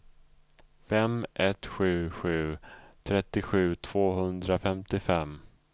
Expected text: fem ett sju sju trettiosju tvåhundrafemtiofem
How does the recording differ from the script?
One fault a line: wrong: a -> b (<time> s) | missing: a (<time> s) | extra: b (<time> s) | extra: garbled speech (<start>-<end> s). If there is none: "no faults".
no faults